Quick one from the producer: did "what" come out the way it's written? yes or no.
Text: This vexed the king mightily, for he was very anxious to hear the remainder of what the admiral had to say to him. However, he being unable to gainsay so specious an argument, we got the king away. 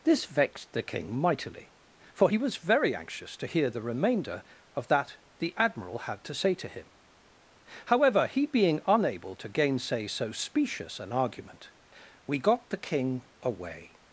no